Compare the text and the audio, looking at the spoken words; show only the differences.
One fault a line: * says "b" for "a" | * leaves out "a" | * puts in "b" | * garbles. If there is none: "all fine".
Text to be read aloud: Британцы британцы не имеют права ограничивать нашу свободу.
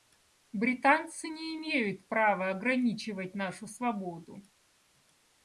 * leaves out "британцы"